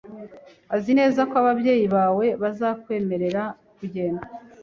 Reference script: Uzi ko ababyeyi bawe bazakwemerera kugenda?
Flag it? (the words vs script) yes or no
yes